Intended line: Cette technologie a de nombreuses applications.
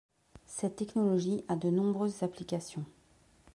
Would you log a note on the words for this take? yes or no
no